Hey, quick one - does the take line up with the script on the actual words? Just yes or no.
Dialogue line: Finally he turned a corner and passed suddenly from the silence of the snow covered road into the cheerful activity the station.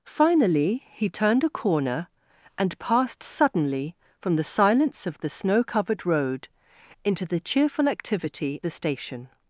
yes